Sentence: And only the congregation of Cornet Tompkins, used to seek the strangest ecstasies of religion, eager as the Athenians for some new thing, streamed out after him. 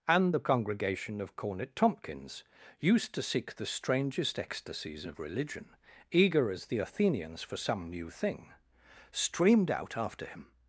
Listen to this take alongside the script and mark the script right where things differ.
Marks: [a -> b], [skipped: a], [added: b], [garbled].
And [skipped: only] the congregation of Cornet Tompkins, used to seek the strangest ecstasies of religion, eager as the Athenians for some new thing, streamed out after him.